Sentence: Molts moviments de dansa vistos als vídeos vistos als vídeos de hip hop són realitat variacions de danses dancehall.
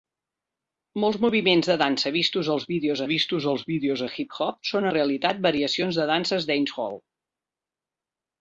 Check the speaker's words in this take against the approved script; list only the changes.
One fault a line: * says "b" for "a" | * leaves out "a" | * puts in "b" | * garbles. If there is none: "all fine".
all fine